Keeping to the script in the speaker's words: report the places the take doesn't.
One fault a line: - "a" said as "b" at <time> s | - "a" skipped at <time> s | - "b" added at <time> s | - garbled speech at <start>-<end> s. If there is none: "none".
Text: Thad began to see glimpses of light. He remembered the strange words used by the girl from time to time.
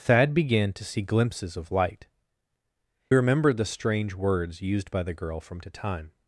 - "He" skipped at 2.1 s
- "time" skipped at 5.6 s